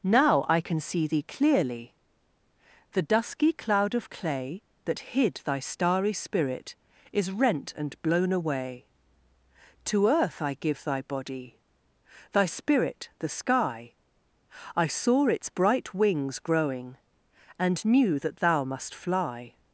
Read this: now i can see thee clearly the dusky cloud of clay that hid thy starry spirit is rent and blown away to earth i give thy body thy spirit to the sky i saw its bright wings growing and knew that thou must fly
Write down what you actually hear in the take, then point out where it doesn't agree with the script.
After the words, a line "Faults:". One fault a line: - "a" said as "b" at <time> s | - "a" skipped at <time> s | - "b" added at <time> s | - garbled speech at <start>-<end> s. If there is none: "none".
now i can see thee clearly the dusky cloud of clay that hid thy starry spirit is rent and blown away to earth i give thy body thy spirit the sky i saw its bright wings growing and knew that thou must fly
Faults:
- "to" skipped at 13.1 s